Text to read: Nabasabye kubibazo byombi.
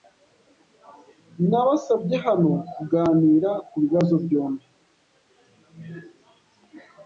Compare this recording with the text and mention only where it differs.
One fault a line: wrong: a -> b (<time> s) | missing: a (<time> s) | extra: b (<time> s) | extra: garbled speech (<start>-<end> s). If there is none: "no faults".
extra: hano kuganira (2.2 s)